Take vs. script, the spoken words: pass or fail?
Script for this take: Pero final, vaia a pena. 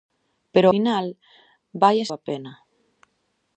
pass